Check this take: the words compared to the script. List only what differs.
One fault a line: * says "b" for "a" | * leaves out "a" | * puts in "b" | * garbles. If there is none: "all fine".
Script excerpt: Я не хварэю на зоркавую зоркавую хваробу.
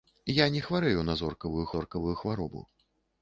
all fine